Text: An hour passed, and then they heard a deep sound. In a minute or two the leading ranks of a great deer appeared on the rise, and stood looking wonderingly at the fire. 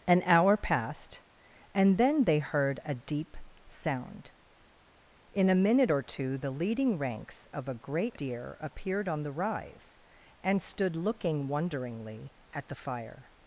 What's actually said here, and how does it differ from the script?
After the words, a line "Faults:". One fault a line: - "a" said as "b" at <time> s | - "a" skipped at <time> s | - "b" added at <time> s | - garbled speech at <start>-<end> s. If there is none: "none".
An hour passed, and then they heard a deep sound. In a minute or two the leading ranks of a great deer appeared on the rise, and stood looking wonderingly at the fire.
Faults:
none